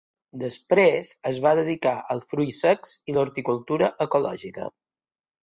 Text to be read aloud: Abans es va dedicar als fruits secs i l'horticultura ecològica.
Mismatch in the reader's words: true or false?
true